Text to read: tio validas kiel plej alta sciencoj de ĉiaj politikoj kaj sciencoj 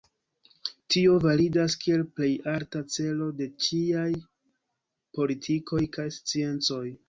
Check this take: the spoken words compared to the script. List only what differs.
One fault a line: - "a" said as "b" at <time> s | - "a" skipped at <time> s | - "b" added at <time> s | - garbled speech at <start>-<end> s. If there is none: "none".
- "sciencoj" said as "celo" at 3.0 s